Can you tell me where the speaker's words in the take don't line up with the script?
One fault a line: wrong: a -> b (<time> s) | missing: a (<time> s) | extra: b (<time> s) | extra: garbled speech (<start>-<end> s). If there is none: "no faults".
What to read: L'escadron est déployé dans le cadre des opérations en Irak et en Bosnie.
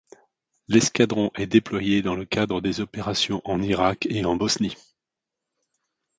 no faults